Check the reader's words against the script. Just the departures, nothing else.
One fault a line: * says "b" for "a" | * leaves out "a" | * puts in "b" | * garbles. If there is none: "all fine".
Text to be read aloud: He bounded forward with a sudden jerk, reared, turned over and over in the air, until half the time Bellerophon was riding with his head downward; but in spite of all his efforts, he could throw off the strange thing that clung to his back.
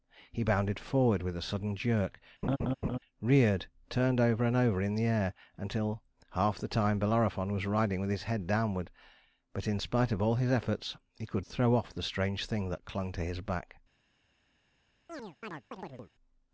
all fine